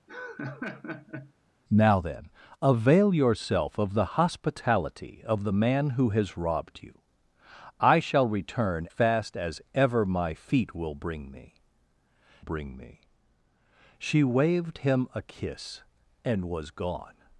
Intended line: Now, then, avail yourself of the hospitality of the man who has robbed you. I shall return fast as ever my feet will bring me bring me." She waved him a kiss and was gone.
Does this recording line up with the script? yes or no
yes